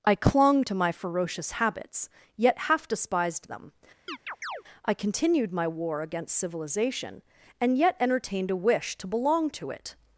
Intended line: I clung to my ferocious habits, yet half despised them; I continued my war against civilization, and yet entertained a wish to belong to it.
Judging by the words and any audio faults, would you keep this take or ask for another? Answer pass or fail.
fail